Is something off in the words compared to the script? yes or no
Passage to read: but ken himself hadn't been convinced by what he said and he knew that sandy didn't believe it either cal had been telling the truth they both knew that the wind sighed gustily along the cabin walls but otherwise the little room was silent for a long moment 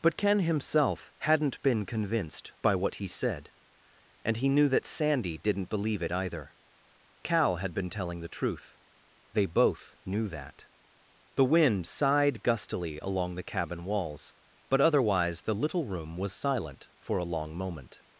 no